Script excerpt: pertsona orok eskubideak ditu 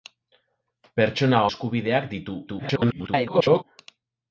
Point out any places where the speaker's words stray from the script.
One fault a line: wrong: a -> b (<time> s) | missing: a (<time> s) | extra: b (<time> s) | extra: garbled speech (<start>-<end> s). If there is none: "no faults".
missing: orok (1.4 s)
extra: garbled speech (2.5-3.6 s)